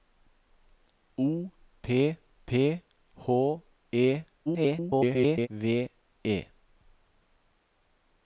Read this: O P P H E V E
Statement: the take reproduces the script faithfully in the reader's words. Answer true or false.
false